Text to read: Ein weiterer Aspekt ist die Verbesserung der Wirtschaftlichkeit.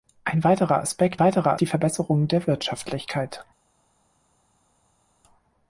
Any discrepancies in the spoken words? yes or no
yes